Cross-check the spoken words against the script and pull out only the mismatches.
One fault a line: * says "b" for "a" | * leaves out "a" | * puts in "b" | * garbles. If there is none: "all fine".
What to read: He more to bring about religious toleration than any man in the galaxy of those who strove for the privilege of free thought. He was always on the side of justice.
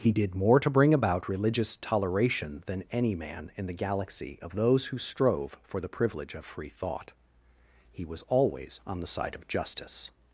* puts in "did"